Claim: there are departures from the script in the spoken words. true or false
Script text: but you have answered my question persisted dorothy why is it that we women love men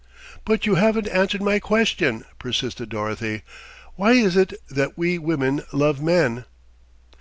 true